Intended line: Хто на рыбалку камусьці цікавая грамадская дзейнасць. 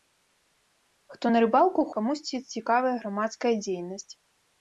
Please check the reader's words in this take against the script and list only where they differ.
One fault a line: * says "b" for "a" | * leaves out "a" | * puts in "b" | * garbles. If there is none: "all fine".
all fine